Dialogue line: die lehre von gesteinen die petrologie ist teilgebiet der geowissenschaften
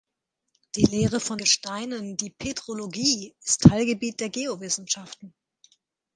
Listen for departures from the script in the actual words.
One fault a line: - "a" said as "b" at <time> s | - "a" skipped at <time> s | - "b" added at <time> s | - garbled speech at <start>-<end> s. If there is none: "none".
none